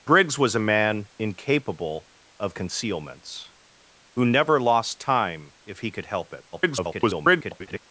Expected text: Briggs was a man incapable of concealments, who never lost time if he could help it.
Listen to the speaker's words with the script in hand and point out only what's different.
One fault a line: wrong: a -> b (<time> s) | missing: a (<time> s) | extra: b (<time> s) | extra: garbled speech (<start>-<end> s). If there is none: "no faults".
extra: garbled speech (6.5-7.8 s)